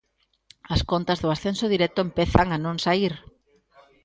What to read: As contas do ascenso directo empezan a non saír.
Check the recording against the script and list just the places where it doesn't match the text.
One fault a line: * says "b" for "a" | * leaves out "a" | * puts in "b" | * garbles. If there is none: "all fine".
all fine